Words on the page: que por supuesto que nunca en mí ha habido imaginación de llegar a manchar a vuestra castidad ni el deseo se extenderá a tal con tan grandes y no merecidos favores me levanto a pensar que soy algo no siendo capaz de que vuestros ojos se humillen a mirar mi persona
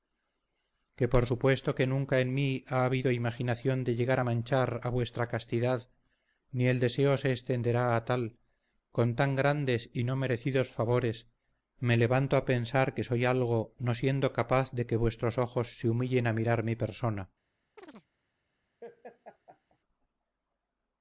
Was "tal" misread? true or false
false